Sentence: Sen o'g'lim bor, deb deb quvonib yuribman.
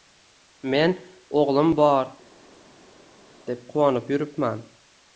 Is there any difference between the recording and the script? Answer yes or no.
yes